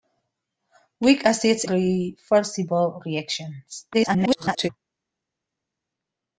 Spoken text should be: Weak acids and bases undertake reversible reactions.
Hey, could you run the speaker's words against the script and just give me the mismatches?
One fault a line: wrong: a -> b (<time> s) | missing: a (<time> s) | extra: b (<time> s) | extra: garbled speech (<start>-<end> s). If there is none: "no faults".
missing: and bases undertake (1.6 s)
extra: garbled speech (3.9-4.7 s)